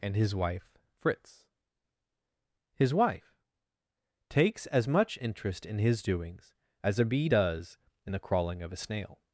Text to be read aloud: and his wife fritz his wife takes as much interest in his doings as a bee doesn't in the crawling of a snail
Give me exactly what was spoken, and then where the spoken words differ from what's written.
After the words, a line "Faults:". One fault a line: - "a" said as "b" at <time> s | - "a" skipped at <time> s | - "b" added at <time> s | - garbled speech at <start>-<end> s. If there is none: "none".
and his wife fritz his wife takes as much interest in his doings as a bee does in the crawling of a snail
Faults:
- "doesn't" said as "does" at 7.2 s